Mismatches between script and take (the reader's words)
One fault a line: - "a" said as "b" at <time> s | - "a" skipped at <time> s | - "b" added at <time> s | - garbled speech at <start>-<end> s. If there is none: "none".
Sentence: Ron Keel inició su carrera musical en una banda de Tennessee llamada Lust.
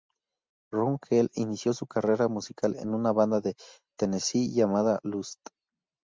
none